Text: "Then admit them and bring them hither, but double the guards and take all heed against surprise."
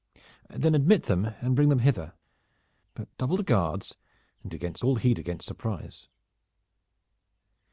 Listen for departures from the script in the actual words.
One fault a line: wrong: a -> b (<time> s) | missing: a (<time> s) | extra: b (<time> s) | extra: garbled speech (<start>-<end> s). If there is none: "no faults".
wrong: take -> against (4.5 s)